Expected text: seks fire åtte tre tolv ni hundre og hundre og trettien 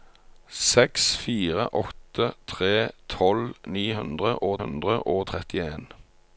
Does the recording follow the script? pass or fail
pass